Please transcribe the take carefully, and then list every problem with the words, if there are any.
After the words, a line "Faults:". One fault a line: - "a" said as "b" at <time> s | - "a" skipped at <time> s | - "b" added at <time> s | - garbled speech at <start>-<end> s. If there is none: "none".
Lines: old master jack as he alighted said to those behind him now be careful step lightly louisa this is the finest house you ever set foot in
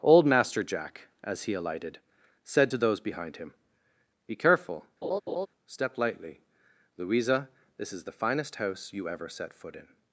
old master jack as he alighted said to those behind him be careful step lightly louisa this is the finest house you ever set foot in
Faults:
- "now" skipped at 3.5 s